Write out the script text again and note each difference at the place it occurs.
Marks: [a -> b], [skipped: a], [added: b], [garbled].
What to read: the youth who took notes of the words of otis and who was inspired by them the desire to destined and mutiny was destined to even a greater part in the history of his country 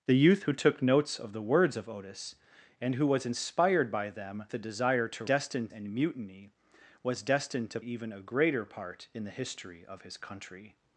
the youth who took notes of the words of otis and who was inspired by them the desire to destined and mutiny was destined to even a greater part in the history of his country